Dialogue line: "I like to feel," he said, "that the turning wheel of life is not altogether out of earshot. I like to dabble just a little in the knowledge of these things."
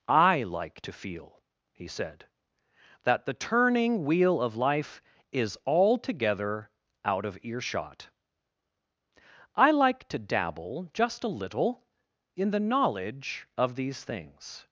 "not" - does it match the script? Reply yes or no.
no